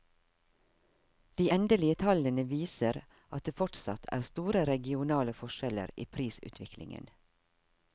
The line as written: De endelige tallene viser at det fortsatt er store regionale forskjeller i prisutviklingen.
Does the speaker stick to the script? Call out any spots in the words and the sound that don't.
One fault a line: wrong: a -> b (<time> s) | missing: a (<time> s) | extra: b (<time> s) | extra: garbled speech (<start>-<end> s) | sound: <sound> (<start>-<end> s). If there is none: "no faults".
no faults